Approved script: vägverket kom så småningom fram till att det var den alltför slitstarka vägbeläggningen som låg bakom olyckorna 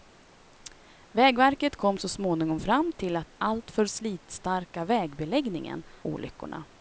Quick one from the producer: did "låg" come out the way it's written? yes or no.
no